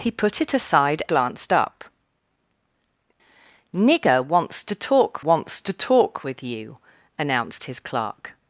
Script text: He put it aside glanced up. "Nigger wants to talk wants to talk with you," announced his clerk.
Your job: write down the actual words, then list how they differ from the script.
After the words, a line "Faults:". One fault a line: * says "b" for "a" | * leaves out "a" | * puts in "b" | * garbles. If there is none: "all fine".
He put it aside glanced up. "Nigger wants to talk wants to talk with you," announced his clerk.
Faults:
all fine